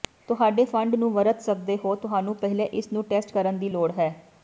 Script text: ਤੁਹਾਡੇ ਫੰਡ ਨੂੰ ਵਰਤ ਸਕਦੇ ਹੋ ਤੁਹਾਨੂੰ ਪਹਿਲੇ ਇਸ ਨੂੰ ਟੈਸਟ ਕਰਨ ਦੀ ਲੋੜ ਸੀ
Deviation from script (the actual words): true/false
true